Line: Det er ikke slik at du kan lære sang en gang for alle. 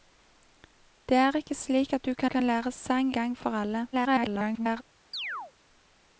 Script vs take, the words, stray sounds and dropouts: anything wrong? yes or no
yes